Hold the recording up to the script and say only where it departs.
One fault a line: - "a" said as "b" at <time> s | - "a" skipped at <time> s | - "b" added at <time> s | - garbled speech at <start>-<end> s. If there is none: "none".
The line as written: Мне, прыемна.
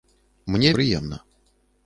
none